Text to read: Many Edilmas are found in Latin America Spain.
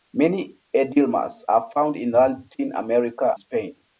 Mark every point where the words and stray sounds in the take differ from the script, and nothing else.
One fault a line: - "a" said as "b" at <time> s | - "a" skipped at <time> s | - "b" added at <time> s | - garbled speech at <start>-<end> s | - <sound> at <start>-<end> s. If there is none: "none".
none